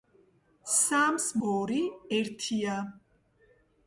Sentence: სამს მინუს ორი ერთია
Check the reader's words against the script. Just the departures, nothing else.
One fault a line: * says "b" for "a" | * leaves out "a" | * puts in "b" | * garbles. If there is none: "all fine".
* leaves out "მინუს"